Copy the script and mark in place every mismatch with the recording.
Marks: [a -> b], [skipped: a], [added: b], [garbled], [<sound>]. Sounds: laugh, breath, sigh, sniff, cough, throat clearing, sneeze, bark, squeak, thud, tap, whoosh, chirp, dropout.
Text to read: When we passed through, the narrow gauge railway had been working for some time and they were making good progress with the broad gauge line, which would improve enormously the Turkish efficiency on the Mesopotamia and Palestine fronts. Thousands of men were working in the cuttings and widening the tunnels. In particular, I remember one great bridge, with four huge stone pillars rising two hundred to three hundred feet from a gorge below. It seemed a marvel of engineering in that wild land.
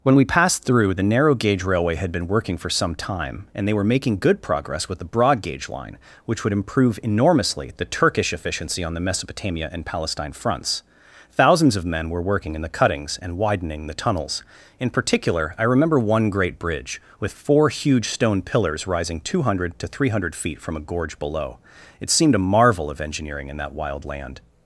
When we passed through, the narrow gauge railway had been working for some time and they were making good progress with the broad gauge line, which would improve enormously the Turkish efficiency on the Mesopotamia and Palestine fronts. Thousands of men were working in the cuttings and widening the tunnels. In particular, I remember one great bridge, with four huge stone pillars rising two hundred to three hundred feet from a gorge below. It seemed a marvel of engineering in that wild land.